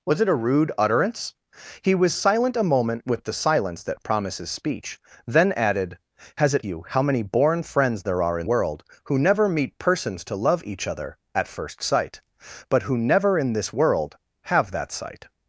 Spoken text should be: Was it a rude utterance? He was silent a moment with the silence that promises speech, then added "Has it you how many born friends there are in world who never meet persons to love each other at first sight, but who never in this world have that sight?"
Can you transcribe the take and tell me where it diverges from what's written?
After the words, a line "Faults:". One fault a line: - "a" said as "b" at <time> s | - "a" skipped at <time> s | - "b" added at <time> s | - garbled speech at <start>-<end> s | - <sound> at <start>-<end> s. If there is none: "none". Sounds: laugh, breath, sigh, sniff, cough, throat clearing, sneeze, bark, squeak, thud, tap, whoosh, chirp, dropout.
Was it a rude utterance? He was silent a moment with the silence that promises speech, then added "Has it you how many born friends there are in world who never meet persons to love each other at first sight, but who never in this world have that sight?"
Faults:
none